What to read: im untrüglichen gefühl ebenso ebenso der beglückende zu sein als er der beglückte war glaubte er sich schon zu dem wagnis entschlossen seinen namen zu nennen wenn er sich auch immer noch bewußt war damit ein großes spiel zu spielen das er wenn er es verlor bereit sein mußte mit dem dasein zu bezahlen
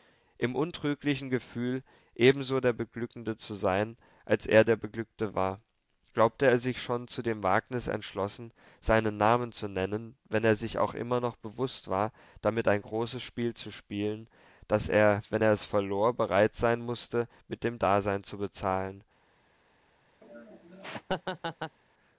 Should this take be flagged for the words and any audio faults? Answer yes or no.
yes